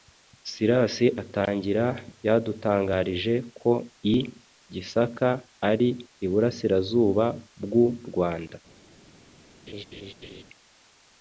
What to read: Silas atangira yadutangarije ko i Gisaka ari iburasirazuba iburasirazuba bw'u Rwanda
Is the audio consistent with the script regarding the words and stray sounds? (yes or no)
no